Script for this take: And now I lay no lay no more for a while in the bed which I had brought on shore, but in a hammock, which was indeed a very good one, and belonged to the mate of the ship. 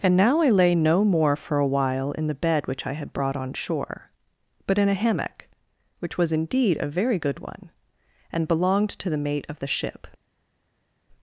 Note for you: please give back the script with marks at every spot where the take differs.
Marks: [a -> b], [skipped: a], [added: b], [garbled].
And now I lay no [skipped: lay no] more for a while in the bed which I had brought on shore, but in a hammock, which was indeed a very good one, and belonged to the mate of the ship.